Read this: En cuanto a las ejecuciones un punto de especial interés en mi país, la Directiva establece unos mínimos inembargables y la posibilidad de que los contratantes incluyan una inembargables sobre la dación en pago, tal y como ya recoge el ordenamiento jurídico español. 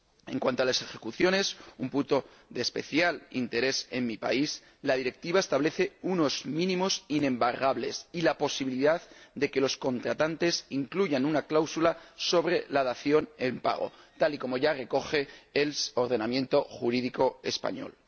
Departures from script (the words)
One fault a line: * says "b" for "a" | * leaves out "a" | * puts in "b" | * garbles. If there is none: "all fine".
* says "cláusula" for "inembargables"